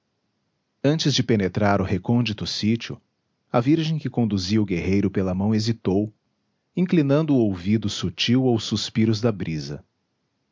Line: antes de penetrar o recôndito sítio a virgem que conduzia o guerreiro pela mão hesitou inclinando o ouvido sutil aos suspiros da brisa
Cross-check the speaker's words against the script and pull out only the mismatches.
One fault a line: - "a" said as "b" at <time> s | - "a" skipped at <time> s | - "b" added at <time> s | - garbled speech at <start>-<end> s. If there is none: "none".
none